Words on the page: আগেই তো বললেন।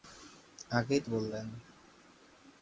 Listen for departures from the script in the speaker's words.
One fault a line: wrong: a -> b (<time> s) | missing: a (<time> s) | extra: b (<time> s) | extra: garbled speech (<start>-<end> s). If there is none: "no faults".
no faults